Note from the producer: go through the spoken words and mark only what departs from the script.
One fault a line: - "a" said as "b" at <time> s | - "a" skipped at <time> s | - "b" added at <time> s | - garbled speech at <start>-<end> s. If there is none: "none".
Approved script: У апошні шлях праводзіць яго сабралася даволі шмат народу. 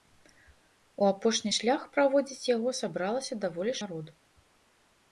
- "шмат" skipped at 3.8 s